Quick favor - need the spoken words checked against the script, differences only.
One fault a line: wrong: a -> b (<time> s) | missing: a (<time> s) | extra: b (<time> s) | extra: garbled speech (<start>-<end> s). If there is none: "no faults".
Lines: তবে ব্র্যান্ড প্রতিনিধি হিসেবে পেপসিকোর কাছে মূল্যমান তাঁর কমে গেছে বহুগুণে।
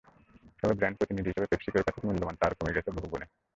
no faults